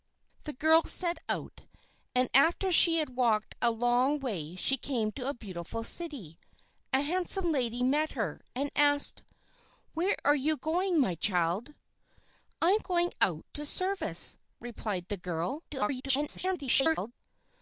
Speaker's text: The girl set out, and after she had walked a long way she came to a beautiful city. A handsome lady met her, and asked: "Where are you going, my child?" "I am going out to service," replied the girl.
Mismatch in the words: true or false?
true